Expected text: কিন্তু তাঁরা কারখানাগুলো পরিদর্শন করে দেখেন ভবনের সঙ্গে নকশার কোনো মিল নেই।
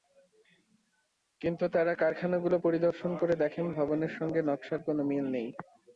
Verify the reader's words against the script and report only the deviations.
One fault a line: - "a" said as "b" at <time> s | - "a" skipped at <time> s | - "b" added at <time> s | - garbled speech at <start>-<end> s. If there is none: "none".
none